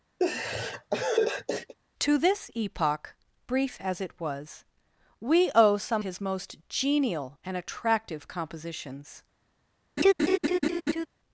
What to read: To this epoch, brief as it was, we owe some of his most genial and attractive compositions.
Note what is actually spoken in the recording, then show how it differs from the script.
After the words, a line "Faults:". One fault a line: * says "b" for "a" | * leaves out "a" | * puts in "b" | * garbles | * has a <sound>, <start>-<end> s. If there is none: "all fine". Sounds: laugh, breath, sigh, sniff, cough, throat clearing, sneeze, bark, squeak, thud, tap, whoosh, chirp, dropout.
To this epoch, brief as it was, we owe some his most genial and attractive compositions.
Faults:
* has a laugh, 0.2-1.7 s
* leaves out "of"
* has a laugh, 10.0-11.1 s